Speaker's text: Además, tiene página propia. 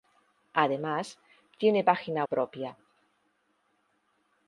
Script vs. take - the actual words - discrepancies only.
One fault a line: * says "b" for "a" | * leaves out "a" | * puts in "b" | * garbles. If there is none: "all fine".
all fine